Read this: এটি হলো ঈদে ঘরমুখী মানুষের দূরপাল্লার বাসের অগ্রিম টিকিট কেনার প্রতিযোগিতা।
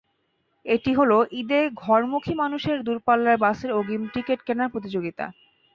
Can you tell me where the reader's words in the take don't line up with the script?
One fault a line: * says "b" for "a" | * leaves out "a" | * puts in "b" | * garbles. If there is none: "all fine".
all fine